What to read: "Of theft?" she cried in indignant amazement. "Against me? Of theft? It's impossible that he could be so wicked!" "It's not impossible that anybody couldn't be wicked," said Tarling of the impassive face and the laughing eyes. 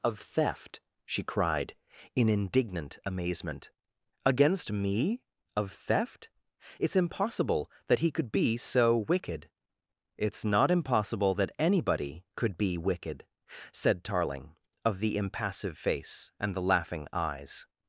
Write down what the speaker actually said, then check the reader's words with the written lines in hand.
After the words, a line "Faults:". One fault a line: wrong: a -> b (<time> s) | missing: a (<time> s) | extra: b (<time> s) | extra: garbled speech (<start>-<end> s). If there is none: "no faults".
"Of theft?" she cried in indignant amazement. "Against me? Of theft? It's impossible that he could be so wicked!" "It's not impossible that anybody could be wicked," said Tarling of the impassive face and the laughing eyes.
Faults:
wrong: couldn't -> could (12.3 s)